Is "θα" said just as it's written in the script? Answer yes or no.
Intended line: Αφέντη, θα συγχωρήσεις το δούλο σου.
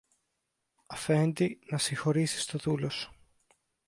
no